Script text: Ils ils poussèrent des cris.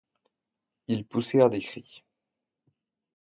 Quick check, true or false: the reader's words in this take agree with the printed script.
false